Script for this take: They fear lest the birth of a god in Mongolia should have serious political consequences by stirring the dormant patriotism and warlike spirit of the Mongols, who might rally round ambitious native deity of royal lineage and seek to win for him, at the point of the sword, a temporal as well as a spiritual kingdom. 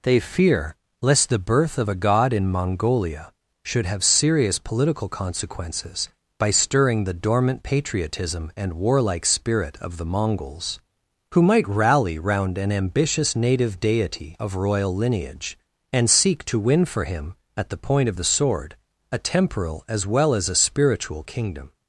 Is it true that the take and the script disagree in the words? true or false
true